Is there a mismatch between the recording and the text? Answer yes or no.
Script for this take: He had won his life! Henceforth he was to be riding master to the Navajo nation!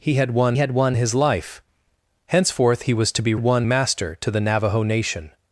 yes